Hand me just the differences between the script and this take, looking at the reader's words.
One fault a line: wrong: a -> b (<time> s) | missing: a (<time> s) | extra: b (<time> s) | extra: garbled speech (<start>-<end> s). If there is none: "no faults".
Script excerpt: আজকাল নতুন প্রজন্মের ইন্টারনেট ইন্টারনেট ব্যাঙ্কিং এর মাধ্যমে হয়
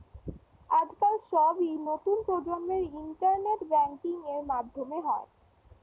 extra: সবই (1.3 s)
missing: ইন্টারনেট (3.6 s)